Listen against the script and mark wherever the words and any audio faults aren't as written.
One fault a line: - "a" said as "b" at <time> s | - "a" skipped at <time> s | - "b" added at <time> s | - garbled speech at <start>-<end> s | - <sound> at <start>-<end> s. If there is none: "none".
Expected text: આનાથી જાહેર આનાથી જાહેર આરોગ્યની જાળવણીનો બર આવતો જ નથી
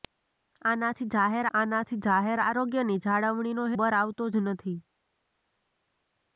none